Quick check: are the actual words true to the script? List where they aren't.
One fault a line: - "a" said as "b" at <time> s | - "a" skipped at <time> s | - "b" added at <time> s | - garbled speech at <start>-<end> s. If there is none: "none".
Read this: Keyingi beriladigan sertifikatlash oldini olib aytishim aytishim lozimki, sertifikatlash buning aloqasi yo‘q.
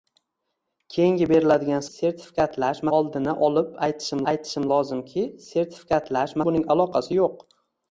none